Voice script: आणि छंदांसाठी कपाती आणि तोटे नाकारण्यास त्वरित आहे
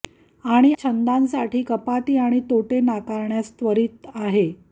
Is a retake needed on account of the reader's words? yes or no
no